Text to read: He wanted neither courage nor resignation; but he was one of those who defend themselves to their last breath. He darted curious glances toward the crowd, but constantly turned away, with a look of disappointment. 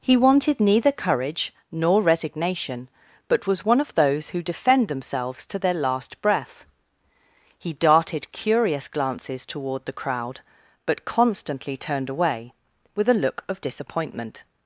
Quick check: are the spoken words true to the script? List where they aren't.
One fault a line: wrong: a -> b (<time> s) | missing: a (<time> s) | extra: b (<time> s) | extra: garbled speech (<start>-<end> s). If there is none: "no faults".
missing: he (3.5 s)